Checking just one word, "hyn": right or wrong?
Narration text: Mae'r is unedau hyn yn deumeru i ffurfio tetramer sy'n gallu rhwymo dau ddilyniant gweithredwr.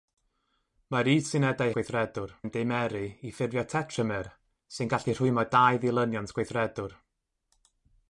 wrong